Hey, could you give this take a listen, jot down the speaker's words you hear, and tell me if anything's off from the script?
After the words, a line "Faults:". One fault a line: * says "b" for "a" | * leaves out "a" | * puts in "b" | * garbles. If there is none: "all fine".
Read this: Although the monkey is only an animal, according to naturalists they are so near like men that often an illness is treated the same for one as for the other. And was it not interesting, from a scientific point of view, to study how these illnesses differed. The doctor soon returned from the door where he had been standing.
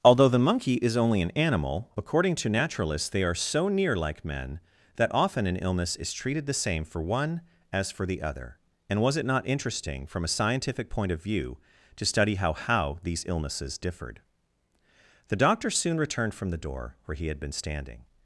Although the monkey is only an animal, according to naturalists they are so near like men that often an illness is treated the same for one as for the other. And was it not interesting, from a scientific point of view, to study how how these illnesses differed. The doctor soon returned from the door where he had been standing.
Faults:
* puts in "how"